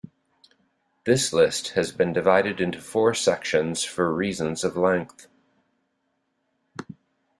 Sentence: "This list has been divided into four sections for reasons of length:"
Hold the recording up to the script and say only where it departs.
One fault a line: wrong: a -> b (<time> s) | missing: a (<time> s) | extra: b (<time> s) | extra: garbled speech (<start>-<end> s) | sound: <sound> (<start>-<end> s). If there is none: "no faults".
no faults